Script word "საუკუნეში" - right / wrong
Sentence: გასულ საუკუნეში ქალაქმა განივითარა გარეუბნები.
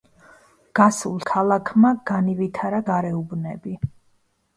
wrong